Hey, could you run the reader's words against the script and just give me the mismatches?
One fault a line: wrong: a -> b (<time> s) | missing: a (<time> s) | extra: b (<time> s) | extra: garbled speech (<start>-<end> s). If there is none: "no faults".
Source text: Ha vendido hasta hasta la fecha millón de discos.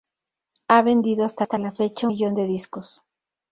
no faults